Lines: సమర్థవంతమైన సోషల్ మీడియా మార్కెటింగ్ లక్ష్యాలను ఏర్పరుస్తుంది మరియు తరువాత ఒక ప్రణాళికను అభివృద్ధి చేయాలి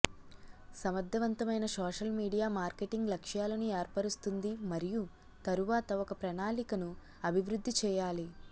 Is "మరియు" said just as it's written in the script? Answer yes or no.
yes